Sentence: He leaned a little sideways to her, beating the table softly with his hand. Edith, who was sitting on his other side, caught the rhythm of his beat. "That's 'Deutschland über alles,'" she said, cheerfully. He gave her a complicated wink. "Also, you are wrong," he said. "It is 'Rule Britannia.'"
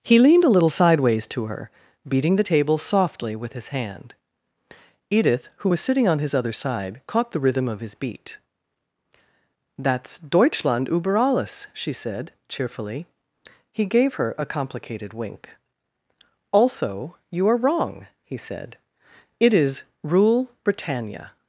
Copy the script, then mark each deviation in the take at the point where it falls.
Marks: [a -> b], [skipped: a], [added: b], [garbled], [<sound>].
He leaned a little sideways to her, beating the table softly with his hand. Edith, who was sitting on his other side, caught the rhythm of his beat. "That's 'Deutschland über alles,'" she said, cheerfully. He gave her a complicated wink. "Also, you are wrong," he said. "It is 'Rule Britannia.'"